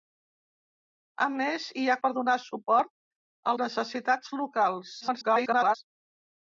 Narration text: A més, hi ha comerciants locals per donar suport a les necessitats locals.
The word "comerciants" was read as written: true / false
false